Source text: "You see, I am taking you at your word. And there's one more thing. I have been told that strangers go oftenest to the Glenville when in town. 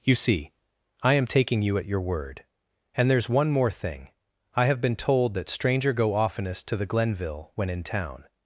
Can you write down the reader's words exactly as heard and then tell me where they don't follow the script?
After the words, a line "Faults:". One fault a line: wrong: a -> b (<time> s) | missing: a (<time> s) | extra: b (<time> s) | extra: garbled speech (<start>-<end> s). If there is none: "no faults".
"You see, I am taking you at your word. And there's one more thing. I have been told that stranger go oftenest to the Glenville when in town.
Faults:
wrong: strangers -> stranger (5.5 s)